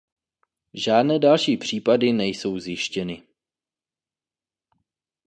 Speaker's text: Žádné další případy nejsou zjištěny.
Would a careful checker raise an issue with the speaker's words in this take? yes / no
no